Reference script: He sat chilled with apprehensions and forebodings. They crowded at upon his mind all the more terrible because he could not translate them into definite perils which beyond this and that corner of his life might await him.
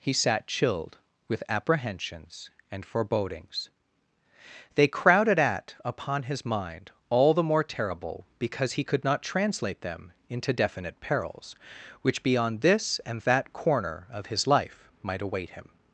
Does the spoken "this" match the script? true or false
true